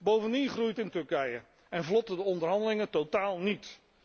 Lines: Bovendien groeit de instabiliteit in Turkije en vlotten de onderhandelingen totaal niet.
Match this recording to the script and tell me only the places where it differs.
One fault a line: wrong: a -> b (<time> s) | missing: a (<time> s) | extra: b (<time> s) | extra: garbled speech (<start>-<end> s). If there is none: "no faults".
missing: de instabiliteit (0.8 s)